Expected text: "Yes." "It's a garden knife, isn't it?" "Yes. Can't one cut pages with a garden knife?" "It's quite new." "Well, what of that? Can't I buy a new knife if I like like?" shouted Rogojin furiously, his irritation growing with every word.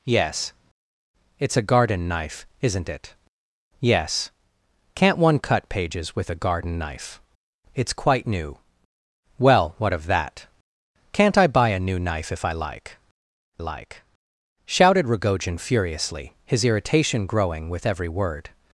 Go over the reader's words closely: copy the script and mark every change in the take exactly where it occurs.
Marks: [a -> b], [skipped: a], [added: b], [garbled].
"Yes." "It's a garden knife, isn't it?" "Yes. Can't one cut pages with a garden knife?" "It's quite new." "Well, what of that? Can't I buy a new knife if I like like?" shouted Rogojin furiously, his irritation growing with every word.